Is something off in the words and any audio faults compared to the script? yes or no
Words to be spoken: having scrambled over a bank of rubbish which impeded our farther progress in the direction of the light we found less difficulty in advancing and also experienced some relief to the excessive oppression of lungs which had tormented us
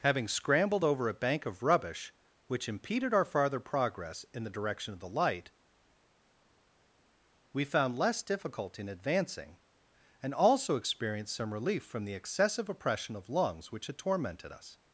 yes